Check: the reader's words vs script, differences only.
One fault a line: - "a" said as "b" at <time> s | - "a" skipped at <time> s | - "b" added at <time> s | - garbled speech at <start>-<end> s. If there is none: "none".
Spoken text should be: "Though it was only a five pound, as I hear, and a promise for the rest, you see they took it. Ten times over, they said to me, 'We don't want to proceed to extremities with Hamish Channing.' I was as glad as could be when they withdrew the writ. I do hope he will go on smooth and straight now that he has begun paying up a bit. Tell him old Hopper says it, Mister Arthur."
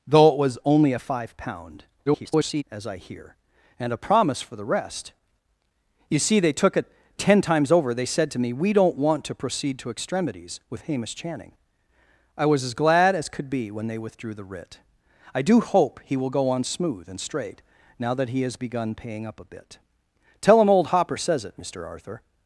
- garbled speech at 2.1-2.6 s